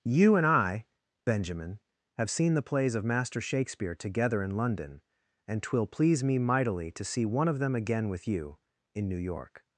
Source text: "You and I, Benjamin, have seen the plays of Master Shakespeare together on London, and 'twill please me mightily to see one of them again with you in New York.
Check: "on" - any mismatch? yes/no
yes